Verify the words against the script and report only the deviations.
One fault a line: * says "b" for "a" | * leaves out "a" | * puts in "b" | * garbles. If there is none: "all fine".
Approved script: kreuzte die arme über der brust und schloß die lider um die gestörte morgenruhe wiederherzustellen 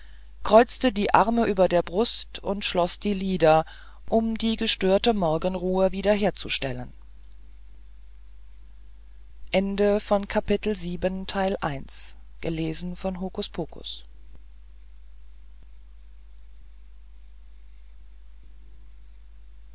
all fine